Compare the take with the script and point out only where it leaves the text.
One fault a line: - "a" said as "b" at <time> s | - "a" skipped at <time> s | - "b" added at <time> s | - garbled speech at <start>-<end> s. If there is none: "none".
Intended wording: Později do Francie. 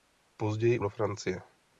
none